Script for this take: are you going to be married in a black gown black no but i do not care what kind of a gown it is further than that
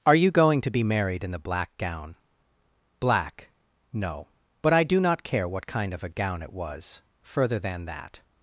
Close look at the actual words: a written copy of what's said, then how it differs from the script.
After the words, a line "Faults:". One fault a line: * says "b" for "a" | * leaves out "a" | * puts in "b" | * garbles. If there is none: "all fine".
are you going to be married in the black gown black no but i do not care what kind of a gown it was further than that
Faults:
* says "the" for "a"
* says "was" for "is"